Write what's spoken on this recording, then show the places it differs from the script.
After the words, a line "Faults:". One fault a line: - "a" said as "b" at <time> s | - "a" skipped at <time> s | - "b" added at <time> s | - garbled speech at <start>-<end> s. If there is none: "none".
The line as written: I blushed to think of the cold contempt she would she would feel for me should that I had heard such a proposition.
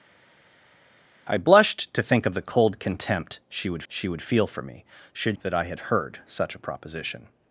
I blushed to think of the cold contempt she would she would feel for me should that I had heard such a proposition.
Faults:
none